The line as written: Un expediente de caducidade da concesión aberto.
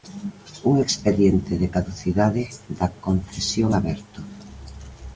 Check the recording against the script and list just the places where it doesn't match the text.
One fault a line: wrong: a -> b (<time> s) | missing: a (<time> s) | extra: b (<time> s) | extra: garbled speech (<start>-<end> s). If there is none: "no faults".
no faults